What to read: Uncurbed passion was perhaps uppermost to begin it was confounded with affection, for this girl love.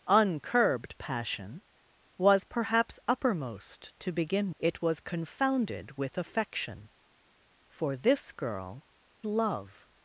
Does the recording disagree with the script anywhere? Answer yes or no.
no